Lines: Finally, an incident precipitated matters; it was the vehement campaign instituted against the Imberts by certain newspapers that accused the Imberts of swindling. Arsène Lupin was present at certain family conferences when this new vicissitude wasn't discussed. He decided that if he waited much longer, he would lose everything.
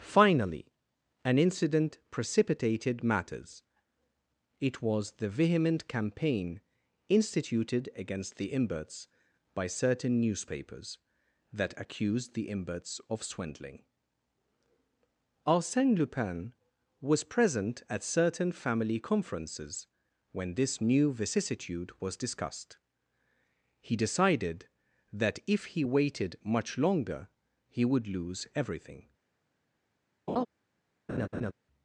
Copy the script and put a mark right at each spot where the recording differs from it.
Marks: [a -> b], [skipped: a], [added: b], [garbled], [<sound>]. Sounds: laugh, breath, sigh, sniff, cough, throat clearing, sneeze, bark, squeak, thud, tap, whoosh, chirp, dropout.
Finally, an incident precipitated matters; it was the vehement campaign instituted against the Imberts by certain newspapers that accused the Imberts of swindling. Arsène Lupin was present at certain family conferences when this new vicissitude [wasn't -> was] discussed. He decided that if he waited much longer, he would lose everything. [laugh] [laugh]